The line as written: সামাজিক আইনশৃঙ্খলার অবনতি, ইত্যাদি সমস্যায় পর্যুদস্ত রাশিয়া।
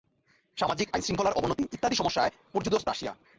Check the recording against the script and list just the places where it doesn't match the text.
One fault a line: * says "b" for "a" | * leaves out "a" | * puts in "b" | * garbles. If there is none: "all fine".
all fine